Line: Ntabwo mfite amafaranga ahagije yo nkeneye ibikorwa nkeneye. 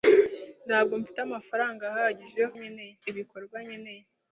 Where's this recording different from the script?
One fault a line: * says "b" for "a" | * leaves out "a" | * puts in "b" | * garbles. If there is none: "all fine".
all fine